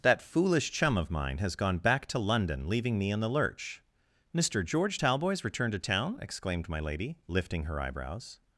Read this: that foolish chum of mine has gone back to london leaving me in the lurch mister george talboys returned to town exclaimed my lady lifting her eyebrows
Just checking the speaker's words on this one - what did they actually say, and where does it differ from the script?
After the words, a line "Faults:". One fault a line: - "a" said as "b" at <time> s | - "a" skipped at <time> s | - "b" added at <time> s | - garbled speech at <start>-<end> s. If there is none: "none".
that foolish chum of mine has gone back to london leaving me in the lurch mister george talboys returned to town exclaimed my lady lifting her eyebrows
Faults:
none